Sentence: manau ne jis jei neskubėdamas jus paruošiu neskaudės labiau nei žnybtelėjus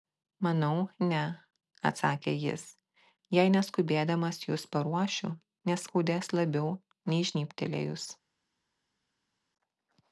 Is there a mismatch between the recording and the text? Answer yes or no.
yes